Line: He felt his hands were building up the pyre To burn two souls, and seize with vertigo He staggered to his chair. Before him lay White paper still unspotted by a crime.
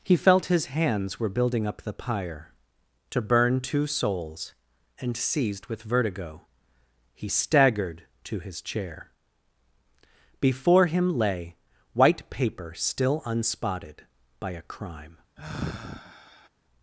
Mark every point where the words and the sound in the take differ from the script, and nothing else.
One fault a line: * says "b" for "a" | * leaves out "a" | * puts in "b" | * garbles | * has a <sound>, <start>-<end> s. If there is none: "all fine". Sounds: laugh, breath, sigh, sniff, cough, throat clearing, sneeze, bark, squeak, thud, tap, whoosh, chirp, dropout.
* says "seized" for "seize"
* has a sigh, 15.4-16.5 s